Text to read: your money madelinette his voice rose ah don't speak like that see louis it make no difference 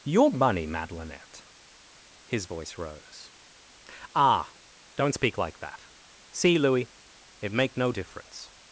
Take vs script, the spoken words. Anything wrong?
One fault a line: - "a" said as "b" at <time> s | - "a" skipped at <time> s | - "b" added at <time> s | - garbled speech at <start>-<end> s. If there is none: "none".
none